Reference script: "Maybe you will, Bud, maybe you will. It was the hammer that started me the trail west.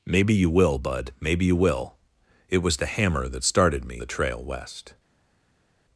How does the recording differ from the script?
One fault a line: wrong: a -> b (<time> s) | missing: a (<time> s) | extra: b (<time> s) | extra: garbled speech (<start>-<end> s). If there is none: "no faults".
no faults